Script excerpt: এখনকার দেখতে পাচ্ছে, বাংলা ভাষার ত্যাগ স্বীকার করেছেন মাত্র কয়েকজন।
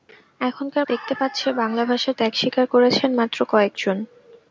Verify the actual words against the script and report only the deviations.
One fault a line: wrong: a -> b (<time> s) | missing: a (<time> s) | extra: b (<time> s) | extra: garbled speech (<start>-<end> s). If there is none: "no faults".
no faults